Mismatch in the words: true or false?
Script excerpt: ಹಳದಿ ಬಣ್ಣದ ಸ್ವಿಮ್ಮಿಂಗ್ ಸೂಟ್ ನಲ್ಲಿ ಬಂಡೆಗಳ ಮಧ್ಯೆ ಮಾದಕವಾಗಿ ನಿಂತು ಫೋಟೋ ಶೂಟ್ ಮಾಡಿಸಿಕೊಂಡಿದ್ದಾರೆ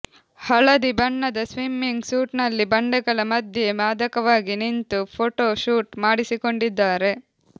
false